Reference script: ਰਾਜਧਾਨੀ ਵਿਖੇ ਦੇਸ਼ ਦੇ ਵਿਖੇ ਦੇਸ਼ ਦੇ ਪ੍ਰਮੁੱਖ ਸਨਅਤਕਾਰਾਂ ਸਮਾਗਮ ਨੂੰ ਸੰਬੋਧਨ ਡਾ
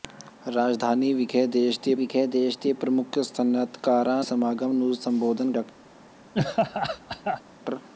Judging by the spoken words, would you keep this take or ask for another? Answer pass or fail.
pass